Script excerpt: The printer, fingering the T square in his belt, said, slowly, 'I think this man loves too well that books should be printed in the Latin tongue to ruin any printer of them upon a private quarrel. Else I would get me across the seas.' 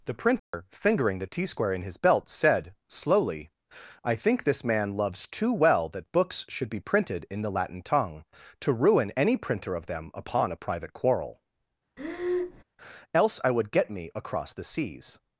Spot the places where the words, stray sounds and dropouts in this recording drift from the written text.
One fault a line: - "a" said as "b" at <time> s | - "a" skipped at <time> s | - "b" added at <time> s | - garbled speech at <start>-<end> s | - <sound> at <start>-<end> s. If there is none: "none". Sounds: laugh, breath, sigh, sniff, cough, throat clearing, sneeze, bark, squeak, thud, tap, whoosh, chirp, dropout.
- dropout at 0.4-0.5 s
- breath at 12.0-12.6 s